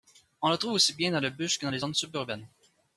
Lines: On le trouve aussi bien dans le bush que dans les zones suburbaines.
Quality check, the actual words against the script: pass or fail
pass